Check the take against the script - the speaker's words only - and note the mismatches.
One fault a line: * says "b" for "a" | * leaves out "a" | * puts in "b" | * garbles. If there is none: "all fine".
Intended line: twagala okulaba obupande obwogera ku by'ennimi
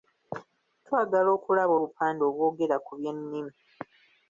all fine